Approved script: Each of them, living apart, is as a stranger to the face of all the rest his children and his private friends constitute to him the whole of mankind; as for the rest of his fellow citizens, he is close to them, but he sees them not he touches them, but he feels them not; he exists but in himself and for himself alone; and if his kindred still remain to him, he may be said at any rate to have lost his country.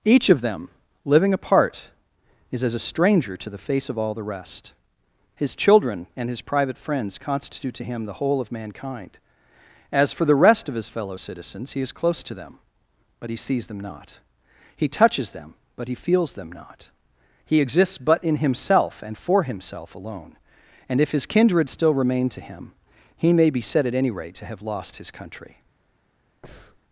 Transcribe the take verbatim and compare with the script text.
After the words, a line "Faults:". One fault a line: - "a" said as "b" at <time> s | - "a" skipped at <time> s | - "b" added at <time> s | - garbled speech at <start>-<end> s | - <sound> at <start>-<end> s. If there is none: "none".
Each of them, living apart, is as a stranger to the face of all the rest his children and his private friends constitute to him the whole of mankind; as for the rest of his fellow citizens, he is close to them, but he sees them not he touches them, but he feels them not; he exists but in himself and for himself alone; and if his kindred still remain to him, he may be said at any rate to have lost his country.
Faults:
- breath at 26.4-26.8 s